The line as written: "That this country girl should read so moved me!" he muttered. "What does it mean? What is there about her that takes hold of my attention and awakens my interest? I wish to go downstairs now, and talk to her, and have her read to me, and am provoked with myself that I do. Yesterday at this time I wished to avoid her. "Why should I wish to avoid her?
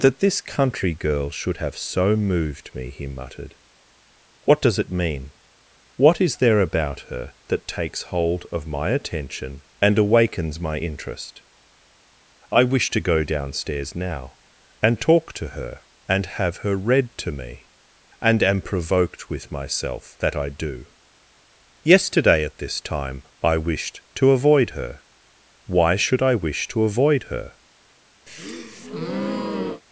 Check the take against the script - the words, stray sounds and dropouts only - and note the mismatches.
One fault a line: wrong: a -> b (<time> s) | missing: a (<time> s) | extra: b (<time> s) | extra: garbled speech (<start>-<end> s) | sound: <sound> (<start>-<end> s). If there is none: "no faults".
wrong: read -> have (1.6 s)
sound: breath (28.3-29.8 s)